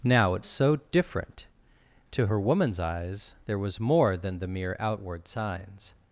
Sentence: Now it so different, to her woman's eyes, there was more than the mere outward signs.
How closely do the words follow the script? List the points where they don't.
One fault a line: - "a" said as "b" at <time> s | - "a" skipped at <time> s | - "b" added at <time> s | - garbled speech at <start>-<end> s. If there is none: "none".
none